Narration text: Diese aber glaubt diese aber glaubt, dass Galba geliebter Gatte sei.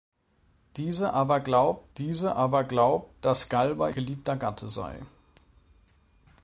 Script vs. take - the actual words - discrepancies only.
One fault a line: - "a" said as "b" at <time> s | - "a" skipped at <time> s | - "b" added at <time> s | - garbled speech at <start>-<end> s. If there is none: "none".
none